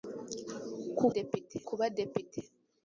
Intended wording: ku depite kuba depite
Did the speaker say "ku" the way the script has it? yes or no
yes